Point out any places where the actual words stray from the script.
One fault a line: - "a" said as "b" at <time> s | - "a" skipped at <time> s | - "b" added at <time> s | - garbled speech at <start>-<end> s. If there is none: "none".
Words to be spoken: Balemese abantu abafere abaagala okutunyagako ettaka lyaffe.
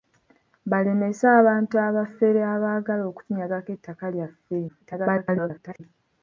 - garbled speech at 4.7-5.8 s